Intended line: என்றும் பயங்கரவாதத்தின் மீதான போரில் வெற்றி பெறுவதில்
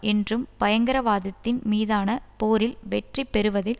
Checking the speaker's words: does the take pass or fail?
pass